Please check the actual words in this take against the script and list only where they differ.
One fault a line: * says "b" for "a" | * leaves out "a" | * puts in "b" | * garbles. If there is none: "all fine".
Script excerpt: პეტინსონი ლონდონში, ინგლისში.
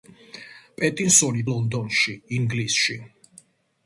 all fine